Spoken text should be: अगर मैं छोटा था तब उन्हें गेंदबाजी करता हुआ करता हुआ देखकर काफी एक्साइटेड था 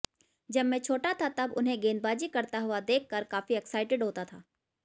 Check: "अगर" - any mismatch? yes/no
yes